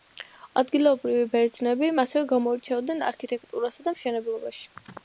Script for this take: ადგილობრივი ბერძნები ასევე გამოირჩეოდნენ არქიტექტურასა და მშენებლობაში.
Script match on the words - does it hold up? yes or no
yes